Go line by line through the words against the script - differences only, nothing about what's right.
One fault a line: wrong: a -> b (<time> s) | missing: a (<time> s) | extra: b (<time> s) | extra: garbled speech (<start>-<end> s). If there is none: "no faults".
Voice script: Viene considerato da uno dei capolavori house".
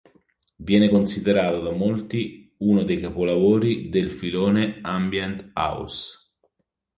extra: molti (1.7 s)
extra: del filone ambient (3.9 s)